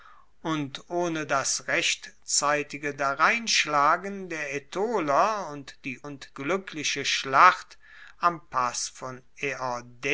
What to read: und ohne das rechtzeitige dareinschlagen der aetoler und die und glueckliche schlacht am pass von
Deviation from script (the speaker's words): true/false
false